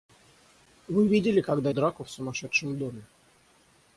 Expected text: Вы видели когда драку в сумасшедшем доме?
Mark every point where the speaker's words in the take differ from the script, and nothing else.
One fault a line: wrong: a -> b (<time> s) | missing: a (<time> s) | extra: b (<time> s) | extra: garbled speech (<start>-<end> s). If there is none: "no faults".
no faults